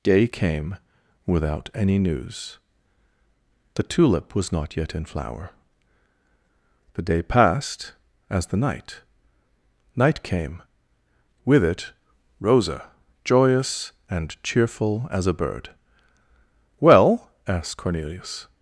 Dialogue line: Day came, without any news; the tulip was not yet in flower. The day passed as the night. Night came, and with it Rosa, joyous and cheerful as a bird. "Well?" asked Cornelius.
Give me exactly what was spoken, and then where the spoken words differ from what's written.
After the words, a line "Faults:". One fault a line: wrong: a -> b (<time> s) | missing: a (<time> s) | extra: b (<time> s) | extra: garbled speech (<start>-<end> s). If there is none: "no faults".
Day came, without any news; the tulip was not yet in flower. The day passed as the night. Night came, with it Rosa, joyous and cheerful as a bird. "Well?" asked Cornelius.
Faults:
missing: and (10.6 s)